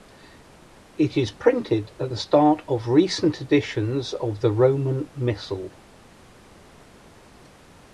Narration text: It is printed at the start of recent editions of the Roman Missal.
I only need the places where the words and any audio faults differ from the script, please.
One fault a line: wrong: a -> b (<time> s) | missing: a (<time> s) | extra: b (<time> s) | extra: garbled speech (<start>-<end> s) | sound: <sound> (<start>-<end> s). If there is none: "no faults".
no faults